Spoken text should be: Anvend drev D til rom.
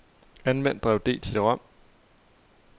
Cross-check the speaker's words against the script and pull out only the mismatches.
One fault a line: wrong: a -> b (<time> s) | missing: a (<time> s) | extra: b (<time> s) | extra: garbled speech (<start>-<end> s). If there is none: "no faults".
no faults